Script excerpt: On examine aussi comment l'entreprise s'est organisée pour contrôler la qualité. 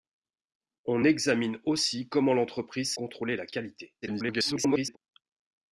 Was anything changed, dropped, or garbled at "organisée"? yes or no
yes